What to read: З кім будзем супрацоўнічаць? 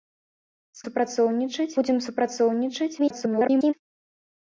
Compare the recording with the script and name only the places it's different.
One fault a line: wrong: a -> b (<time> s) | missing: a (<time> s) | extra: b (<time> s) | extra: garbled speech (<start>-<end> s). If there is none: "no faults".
wrong: кім -> супрацоўнічаць (0.9 s)
extra: garbled speech (3.0-3.7 s)